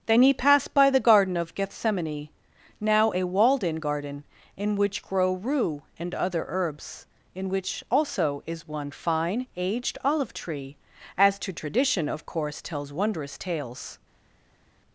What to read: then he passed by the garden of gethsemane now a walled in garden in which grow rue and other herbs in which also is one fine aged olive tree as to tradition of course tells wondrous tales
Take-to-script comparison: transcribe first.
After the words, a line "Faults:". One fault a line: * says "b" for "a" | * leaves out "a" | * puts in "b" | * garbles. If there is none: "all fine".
then he passed by the garden of gethsemane now a walled in garden in which grow rue and other herbs in which also is one fine aged olive tree as to tradition of course tells wondrous tales
Faults:
all fine